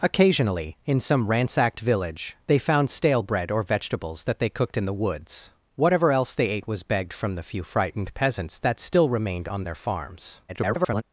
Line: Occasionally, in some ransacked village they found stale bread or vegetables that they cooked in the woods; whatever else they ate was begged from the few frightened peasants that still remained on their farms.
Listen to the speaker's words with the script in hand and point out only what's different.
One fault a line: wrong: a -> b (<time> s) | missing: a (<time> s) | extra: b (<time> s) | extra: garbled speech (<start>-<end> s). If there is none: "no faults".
extra: garbled speech (10.5-11.0 s)